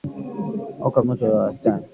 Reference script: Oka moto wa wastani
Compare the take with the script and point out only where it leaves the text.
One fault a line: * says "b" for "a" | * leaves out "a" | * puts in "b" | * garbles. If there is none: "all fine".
all fine